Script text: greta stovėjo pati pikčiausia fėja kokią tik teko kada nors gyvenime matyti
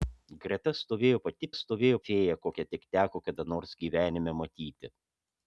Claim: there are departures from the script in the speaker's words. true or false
true